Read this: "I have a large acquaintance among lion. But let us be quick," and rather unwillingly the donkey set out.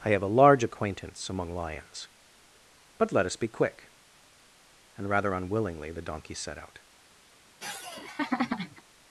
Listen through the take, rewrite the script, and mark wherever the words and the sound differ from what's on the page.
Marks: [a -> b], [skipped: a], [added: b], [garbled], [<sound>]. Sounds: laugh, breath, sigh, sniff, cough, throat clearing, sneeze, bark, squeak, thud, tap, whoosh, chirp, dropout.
"I have a large acquaintance among [lion. -> lions] But let us be quick," and rather unwillingly the donkey set out. [laugh]